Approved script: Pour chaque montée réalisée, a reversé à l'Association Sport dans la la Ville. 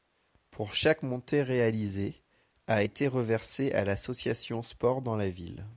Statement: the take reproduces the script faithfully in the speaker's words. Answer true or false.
false